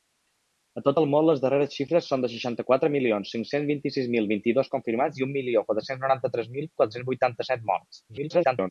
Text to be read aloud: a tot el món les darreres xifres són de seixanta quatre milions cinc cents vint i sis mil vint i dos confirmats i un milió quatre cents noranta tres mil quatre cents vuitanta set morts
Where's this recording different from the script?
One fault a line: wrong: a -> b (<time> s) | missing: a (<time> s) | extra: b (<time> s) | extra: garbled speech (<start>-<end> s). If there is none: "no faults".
extra: garbled speech (8.1-8.7 s)